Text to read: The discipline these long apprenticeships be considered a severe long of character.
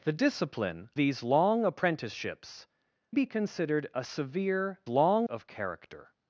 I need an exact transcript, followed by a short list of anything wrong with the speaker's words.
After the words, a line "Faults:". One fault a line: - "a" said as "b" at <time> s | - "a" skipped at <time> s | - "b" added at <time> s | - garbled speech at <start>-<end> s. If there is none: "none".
The discipline these long apprenticeships be considered a severe long of character.
Faults:
none